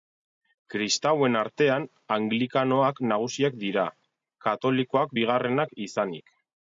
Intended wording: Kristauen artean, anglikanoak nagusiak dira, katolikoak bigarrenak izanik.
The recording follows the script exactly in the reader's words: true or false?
true